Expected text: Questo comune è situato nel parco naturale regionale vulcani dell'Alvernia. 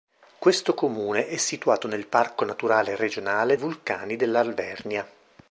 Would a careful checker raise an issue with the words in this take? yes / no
no